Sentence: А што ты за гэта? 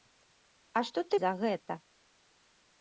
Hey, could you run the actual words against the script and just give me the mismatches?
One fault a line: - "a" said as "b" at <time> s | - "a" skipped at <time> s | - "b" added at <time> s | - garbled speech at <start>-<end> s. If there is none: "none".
none